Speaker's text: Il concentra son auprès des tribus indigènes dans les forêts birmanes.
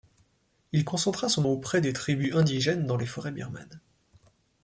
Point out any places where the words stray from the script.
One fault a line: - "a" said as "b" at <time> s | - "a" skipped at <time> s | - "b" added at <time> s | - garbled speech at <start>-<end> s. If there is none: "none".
none